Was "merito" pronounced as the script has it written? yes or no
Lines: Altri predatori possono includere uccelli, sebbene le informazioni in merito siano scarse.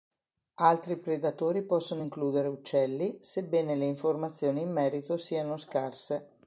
yes